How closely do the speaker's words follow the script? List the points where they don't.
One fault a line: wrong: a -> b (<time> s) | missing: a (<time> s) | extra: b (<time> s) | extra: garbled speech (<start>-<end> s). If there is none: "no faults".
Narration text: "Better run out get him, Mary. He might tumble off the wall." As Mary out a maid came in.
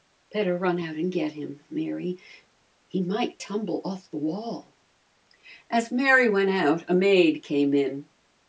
extra: and (0.9 s)
extra: went (6.3 s)